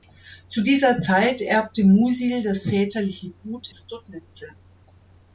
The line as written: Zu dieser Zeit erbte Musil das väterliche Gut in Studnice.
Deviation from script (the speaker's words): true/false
true